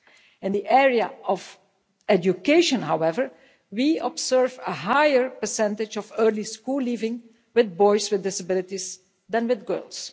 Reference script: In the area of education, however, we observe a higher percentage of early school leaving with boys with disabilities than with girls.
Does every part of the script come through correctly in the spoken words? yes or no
yes